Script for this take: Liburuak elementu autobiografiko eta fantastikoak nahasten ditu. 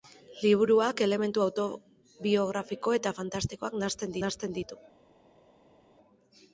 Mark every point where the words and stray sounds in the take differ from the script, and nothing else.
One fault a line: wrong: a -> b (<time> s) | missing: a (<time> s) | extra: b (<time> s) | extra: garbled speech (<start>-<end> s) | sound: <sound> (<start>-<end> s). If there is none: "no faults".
extra: nahasten (4.2 s)